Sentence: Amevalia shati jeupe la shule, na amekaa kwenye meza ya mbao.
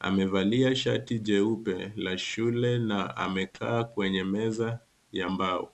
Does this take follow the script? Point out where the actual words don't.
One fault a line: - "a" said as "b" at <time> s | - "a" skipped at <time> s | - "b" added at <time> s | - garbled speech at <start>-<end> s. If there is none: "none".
none